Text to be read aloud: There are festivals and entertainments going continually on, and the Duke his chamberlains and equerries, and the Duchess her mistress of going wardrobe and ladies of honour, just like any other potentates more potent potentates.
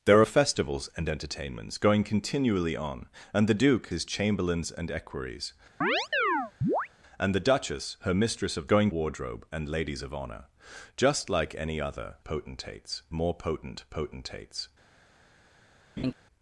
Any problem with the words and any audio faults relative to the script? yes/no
yes